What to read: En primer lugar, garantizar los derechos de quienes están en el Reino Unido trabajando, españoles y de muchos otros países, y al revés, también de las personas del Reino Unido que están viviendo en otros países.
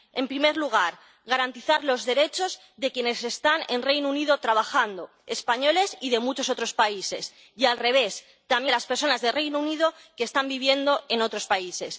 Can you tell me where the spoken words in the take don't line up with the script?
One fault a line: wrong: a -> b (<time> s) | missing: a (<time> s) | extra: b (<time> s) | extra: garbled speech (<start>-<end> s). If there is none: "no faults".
no faults